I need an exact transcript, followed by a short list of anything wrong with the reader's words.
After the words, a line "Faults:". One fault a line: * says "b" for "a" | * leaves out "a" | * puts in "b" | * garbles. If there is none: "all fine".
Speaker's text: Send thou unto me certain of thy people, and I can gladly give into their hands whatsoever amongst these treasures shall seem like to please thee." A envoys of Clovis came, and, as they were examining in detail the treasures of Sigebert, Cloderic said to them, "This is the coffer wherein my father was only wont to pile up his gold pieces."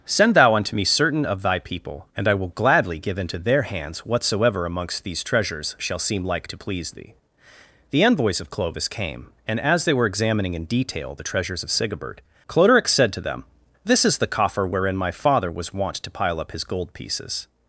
Send thou unto me certain of thy people, and I will gladly give into their hands whatsoever amongst these treasures shall seem like to please thee." The envoys of Clovis came, and, as they were examining in detail the treasures of Sigebert, Cloderic said to them, "This is the coffer wherein my father was wont to pile up his gold pieces."
Faults:
* says "will" for "can"
* says "The" for "A"
* leaves out "only"